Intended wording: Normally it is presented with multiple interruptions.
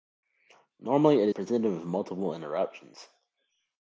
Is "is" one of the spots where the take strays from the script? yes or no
yes